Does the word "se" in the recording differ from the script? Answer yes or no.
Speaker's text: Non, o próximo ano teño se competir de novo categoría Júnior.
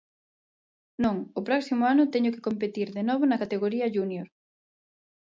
yes